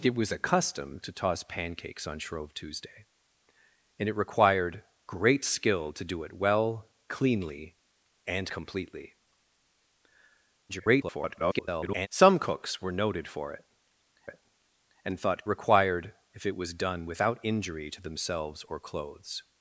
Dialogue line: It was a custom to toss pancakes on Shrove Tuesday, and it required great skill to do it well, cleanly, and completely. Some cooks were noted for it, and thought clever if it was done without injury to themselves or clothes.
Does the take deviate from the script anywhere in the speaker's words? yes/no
yes